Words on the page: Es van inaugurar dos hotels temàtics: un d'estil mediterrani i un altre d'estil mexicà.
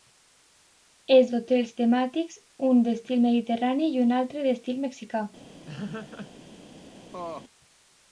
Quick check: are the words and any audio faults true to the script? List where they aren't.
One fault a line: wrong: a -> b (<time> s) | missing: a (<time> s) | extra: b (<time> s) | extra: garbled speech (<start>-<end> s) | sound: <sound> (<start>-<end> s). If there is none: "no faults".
missing: van inaugurar dos (1.3 s)
sound: laugh (5.7-6.3 s)
sound: laugh (7.1-7.4 s)